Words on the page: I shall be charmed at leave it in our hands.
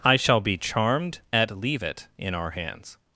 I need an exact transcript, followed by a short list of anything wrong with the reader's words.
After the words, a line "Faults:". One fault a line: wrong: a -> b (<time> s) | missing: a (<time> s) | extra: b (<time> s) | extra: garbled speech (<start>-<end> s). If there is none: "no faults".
I shall be charmed at leave it in our hands.
Faults:
no faults